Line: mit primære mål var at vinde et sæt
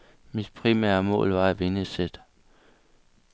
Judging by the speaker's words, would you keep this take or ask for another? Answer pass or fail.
pass